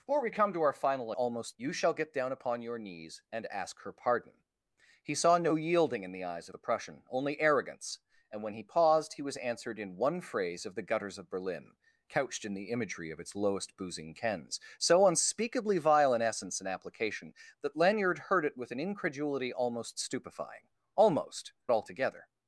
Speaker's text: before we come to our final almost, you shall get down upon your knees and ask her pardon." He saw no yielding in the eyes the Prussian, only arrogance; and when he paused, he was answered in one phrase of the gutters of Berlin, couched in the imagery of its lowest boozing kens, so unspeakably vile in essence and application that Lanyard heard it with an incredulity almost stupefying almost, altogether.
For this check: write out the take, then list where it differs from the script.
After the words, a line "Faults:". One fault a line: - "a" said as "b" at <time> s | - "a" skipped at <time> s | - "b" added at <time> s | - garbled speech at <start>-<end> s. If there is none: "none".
before we come to our final almost, you shall get down upon your knees and ask her pardon." He saw no yielding in the eyes the Prussian, only arrogance; and when he paused, he was answered in one phrase of the gutters of Berlin, couched in the imagery of its lowest boozing kens, so unspeakably vile in essence and application that Lanyard heard it with an incredulity almost stupefying almost, altogether.
Faults:
none